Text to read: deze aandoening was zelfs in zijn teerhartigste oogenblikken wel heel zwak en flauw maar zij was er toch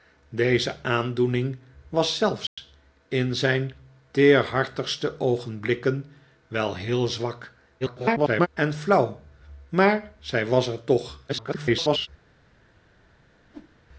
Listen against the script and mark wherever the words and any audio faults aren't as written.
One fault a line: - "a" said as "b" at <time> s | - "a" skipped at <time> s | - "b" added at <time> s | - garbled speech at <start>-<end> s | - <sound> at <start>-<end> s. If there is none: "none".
- dropout at 2.5-2.6 s
- garbled speech at 7.8-8.5 s
- garbled speech at 11.3-12.1 s
- whoosh at 13.4-13.8 s